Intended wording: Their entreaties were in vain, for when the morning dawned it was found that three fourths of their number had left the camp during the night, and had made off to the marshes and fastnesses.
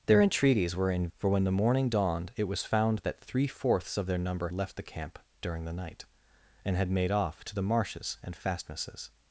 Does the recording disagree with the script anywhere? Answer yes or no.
yes